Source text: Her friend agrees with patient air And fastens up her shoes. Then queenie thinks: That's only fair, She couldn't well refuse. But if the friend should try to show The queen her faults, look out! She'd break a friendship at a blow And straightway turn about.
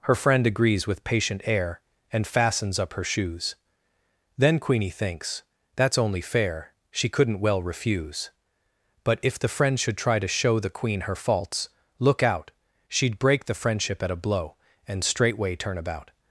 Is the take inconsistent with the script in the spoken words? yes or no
yes